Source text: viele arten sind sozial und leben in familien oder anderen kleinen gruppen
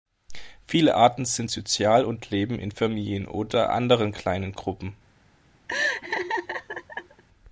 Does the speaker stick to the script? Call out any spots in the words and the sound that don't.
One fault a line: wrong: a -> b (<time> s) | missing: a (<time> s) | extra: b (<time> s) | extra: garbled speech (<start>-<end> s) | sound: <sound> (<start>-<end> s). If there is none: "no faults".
sound: laugh (5.7-7.2 s)